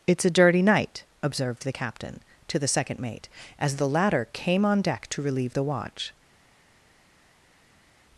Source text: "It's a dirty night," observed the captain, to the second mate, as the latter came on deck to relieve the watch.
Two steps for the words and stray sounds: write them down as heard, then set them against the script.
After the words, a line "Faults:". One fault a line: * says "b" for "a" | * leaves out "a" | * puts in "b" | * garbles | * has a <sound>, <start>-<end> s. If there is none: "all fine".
"It's a dirty night," observed the captain, to the second mate, as the latter came on deck to relieve the watch.
Faults:
all fine